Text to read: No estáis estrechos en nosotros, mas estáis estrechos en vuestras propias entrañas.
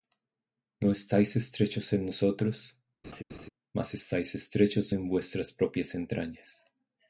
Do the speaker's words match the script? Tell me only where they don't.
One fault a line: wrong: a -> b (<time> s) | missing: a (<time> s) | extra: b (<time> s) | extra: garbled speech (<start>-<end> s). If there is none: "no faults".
no faults